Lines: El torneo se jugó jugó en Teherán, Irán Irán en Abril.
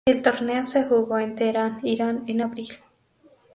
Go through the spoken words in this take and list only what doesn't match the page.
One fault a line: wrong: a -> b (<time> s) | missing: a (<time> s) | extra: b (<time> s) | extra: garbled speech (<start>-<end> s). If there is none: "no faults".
missing: jugó (1.2 s)
missing: Irán (2.2 s)